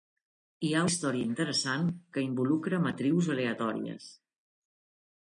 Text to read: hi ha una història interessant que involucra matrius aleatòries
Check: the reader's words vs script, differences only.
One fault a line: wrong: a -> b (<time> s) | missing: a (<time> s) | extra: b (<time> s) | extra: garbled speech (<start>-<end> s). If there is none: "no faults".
missing: una (0.8 s)